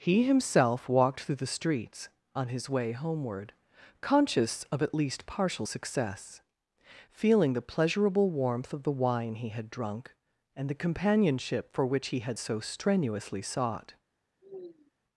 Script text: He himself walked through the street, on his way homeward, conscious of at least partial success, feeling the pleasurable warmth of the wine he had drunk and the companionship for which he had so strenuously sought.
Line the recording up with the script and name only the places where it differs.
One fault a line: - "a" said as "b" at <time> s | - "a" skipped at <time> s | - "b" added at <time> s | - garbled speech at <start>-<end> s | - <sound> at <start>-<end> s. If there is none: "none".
- "street" said as "streets" at 1.6 s
- sigh at 14.4-14.9 s